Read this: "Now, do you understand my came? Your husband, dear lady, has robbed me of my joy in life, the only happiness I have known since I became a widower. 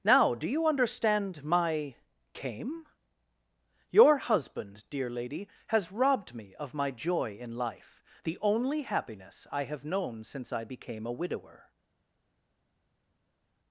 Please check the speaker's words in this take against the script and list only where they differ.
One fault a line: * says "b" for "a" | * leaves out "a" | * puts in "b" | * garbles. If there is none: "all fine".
all fine